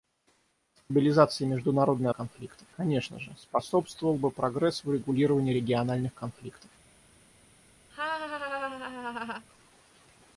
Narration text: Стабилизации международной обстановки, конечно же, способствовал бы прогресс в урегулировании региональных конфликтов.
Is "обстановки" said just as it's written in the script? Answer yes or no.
no